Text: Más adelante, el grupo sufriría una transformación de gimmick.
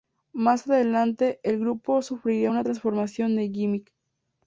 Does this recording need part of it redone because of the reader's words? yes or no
no